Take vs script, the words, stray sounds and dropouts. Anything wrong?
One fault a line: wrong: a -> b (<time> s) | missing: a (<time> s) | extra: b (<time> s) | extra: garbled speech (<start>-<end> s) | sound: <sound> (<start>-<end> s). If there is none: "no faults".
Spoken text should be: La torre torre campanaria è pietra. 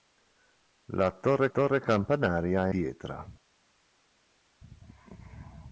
no faults